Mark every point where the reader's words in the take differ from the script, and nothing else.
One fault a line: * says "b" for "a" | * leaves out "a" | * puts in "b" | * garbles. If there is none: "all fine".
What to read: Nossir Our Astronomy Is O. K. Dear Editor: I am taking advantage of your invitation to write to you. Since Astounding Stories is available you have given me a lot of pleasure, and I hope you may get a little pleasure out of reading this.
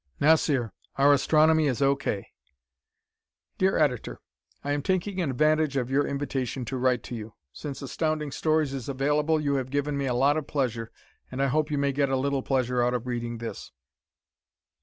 all fine